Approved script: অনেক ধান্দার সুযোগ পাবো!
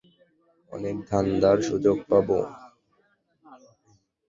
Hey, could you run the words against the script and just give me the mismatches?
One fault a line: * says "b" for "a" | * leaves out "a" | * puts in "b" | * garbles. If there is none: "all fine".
all fine